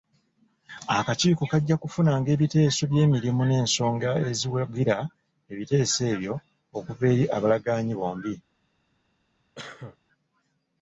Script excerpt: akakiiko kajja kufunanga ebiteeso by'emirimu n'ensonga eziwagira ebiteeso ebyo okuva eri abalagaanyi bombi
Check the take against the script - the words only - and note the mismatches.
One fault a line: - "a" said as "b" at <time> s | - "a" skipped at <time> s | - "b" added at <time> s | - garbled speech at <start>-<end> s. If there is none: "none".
none